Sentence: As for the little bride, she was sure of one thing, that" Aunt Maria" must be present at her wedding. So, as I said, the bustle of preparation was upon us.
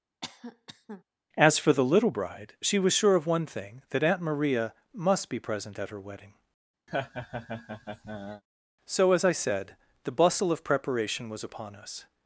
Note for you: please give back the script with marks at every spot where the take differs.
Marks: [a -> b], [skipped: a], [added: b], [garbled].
As for the little bride, she was sure of one thing, that" Aunt Maria" must be present at her wedding. So, as I said, the bustle of preparation was upon us.